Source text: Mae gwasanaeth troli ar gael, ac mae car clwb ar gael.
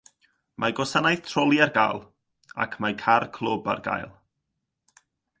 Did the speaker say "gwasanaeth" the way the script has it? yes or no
yes